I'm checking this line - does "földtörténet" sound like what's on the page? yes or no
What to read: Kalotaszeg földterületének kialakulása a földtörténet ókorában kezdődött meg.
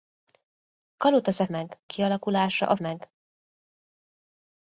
no